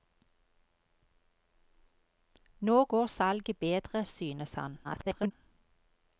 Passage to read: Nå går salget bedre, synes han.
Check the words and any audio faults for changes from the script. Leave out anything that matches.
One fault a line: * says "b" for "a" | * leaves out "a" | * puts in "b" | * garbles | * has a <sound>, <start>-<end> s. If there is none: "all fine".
* garbles